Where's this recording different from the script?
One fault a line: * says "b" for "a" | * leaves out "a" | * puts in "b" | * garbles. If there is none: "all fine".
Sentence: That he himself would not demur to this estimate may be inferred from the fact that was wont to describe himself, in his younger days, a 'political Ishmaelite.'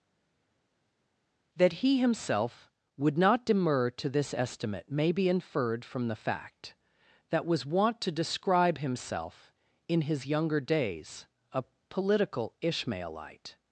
all fine